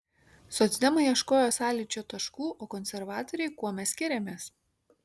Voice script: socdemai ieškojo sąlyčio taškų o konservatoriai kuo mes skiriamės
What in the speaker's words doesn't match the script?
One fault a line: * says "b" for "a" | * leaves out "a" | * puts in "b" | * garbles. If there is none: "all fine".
all fine